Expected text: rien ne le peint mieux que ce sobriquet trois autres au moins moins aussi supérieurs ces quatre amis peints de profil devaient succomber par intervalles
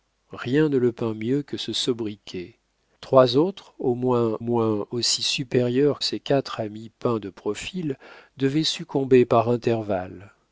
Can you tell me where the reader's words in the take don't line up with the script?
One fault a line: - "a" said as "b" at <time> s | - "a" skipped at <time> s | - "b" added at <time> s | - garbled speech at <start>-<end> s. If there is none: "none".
none